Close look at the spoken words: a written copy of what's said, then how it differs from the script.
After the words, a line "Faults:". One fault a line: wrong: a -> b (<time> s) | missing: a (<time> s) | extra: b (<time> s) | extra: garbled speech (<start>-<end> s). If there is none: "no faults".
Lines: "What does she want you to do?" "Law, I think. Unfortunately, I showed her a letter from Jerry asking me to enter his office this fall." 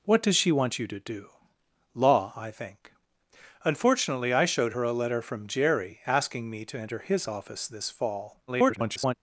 "What does she want you to do?" "Law, I think. Unfortunately, I showed her a letter from Jerry asking me to enter his office this fall." [garbled]
Faults:
extra: garbled speech (8.5-9.1 s)